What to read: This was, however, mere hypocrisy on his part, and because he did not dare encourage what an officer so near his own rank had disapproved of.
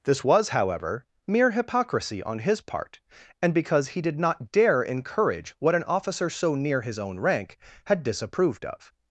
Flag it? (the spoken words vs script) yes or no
no